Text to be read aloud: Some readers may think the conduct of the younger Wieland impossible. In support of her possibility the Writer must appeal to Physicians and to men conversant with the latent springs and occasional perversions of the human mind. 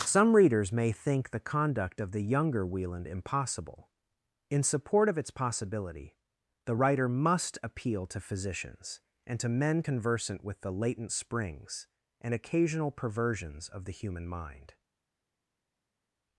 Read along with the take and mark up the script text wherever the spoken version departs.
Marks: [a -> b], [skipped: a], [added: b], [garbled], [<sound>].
Some readers may think the conduct of the younger Wieland impossible. In support of [her -> its] possibility the Writer must appeal to Physicians and to men conversant with the latent springs and occasional perversions of the human mind.